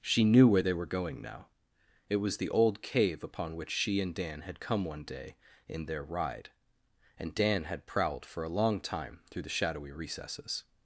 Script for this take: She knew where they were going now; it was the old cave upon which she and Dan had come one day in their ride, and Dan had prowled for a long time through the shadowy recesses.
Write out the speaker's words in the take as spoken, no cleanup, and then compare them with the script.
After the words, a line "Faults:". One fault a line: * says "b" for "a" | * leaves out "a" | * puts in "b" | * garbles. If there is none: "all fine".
She knew where they were going now; it was the old cave upon which she and Dan had come one day in their ride, and Dan had prowled for a long time through the shadowy recesses.
Faults:
all fine